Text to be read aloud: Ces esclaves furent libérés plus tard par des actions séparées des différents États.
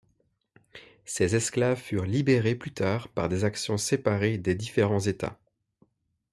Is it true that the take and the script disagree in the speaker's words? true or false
false